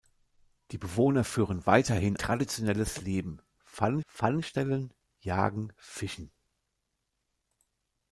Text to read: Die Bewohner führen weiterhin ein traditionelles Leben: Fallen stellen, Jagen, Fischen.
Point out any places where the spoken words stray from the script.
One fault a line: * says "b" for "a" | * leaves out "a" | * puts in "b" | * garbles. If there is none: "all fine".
* leaves out "ein"
* puts in "Fallen"